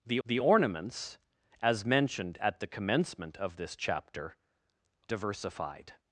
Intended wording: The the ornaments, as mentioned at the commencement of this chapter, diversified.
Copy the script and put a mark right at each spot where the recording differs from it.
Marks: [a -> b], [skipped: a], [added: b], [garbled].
The the ornaments, as mentioned at the commencement of this chapter, diversified.